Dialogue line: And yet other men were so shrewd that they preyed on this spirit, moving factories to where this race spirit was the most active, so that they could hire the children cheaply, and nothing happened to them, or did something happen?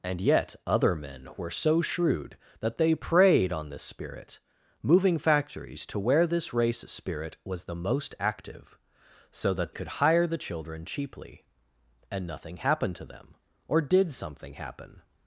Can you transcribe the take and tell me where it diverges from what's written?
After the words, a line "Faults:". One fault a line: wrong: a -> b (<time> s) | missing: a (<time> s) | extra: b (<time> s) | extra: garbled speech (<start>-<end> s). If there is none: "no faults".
And yet other men were so shrewd that they preyed on this spirit, moving factories to where this race spirit was the most active, so that could hire the children cheaply, and nothing happened to them, or did something happen?
Faults:
missing: they (9.7 s)